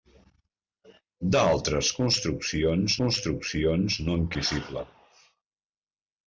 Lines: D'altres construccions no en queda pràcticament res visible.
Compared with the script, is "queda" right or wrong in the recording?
wrong